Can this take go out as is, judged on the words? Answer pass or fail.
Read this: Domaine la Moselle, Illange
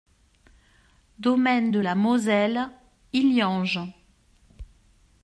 fail